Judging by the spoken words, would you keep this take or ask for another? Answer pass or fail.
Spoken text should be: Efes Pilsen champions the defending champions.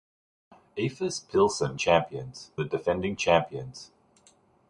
pass